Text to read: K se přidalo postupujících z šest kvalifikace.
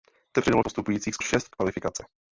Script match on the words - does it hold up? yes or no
yes